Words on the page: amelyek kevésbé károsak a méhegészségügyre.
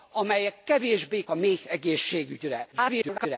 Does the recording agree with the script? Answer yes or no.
no